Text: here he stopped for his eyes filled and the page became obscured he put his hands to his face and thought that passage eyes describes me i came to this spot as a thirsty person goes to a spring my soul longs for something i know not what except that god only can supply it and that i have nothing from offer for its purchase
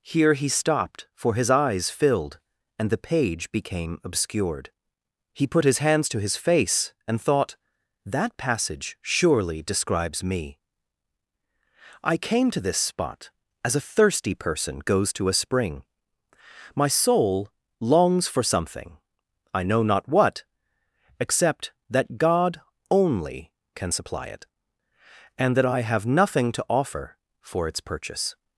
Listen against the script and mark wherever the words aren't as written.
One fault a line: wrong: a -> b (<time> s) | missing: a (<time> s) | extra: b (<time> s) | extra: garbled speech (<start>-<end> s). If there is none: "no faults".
wrong: eyes -> surely (9.0 s)
wrong: from -> to (26.5 s)